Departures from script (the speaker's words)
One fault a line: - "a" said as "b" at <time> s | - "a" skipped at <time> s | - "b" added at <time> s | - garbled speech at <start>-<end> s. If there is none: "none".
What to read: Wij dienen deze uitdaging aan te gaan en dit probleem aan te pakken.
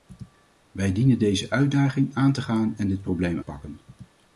- "aan te" skipped at 3.4 s